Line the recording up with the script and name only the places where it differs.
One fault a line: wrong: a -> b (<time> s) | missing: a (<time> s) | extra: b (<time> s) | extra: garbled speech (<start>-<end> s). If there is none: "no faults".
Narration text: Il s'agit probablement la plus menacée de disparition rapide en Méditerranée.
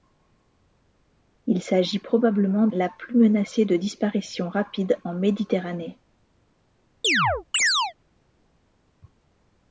no faults